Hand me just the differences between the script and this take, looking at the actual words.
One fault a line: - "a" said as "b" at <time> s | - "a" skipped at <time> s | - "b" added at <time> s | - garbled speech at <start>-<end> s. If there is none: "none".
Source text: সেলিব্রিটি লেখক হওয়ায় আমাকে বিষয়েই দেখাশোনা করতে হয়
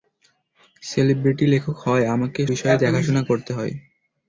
none